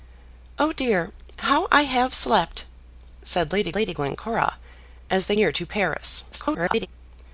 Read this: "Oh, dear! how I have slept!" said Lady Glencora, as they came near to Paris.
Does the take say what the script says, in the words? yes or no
no